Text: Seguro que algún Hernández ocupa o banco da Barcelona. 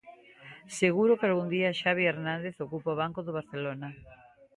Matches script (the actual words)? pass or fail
fail